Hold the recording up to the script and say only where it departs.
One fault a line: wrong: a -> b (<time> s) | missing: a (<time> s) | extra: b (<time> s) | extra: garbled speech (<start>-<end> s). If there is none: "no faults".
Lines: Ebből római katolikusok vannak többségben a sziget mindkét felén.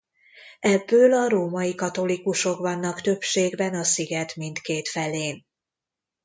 extra: a (1.1 s)